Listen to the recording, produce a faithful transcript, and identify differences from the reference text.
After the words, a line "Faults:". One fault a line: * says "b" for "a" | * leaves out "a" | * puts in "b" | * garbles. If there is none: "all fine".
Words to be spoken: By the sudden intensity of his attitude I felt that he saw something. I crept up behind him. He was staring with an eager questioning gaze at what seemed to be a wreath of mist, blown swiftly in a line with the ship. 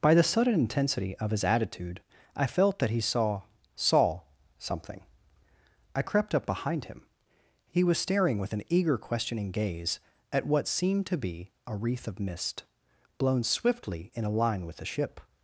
By the sudden intensity of his attitude I felt that he saw saw something. I crept up behind him. He was staring with an eager questioning gaze at what seemed to be a wreath of mist, blown swiftly in a line with the ship.
Faults:
* puts in "saw"